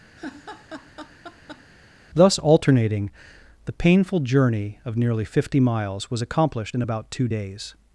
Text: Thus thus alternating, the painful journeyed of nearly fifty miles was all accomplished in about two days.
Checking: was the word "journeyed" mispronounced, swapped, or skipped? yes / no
yes